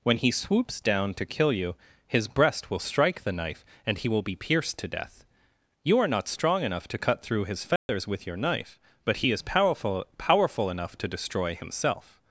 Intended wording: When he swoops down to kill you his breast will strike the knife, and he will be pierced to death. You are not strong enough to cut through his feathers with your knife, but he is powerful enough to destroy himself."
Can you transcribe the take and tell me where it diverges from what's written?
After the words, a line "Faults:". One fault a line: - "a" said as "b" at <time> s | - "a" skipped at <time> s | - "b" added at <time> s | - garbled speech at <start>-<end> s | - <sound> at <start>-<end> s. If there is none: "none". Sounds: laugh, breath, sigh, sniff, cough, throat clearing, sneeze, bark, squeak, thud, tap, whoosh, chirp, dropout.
When he swoops down to kill you his breast will strike the knife, and he will be pierced to death. You are not strong enough to cut through his feathers with your knife, but he is powerful powerful enough to destroy himself."
Faults:
- dropout at 7.8-7.9 s
- "powerful" added at 10.2 s